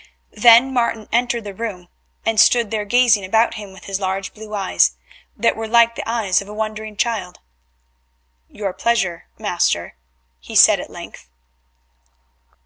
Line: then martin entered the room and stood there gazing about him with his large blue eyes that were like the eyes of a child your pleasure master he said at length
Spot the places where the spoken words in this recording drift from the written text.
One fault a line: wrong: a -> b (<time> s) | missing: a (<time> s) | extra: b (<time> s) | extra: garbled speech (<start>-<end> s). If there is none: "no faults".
extra: wondering (6.5 s)